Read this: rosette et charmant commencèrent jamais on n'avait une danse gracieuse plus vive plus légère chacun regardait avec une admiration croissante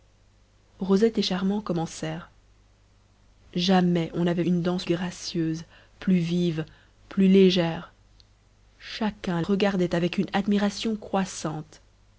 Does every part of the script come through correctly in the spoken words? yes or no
yes